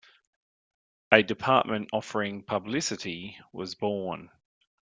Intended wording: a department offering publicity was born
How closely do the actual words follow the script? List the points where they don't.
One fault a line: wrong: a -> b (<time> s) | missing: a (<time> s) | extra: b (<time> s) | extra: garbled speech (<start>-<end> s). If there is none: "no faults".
no faults